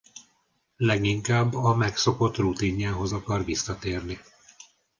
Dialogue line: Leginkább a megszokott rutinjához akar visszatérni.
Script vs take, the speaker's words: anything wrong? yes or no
no